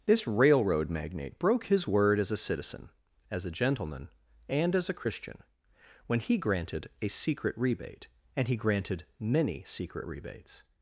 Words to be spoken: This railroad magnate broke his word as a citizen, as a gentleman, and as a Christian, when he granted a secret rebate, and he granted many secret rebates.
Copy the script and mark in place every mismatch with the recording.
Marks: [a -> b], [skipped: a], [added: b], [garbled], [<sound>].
This railroad magnate broke his word as a citizen, as a gentleman, and as a Christian, when he granted a secret rebate, and he granted many secret rebates.